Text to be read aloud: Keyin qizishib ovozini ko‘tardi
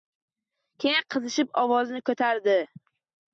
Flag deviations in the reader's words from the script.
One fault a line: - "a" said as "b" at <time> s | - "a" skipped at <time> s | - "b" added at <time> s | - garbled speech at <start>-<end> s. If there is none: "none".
none